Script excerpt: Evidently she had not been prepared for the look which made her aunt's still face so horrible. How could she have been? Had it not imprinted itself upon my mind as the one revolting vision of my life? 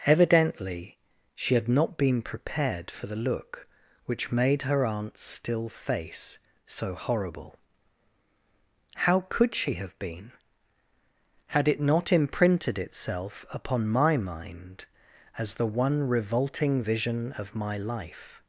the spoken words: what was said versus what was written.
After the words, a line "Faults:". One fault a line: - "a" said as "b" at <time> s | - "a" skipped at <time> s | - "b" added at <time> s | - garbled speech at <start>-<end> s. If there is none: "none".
Evidently she had not been prepared for the look which made her aunt's still face so horrible. How could she have been? Had it not imprinted itself upon my mind as the one revolting vision of my life?
Faults:
none